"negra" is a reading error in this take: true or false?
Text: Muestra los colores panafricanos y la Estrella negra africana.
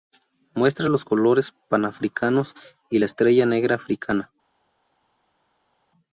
false